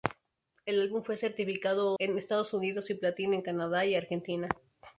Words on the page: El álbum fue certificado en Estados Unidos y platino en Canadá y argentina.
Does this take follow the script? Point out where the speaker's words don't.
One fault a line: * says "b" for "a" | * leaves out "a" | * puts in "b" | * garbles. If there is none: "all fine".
all fine